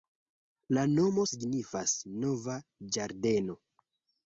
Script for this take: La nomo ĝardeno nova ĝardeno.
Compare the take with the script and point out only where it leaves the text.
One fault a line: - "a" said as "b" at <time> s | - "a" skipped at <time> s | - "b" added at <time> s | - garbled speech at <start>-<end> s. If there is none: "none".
- "ĝardeno" said as "signifas" at 1.3 s